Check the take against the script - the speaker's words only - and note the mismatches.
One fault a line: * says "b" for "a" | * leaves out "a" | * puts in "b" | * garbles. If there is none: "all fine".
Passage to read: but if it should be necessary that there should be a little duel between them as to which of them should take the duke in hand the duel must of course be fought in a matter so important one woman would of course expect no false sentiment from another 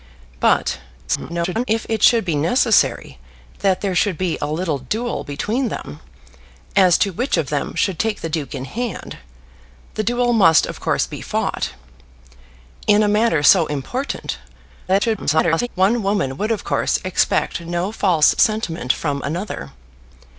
* garbles
* garbles